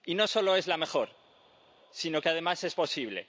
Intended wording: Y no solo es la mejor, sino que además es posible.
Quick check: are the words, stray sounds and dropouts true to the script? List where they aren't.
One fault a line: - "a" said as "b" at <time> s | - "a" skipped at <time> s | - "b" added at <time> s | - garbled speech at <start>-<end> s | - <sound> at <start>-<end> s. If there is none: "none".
none